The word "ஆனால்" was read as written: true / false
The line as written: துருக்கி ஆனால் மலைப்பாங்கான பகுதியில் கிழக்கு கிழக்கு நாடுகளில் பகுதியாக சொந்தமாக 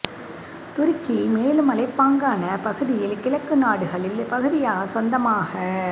false